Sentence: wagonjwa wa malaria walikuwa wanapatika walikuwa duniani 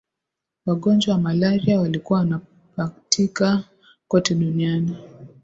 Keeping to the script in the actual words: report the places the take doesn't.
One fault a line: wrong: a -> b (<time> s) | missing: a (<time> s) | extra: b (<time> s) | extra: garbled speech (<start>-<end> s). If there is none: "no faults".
wrong: walikuwa -> kote (4.1 s)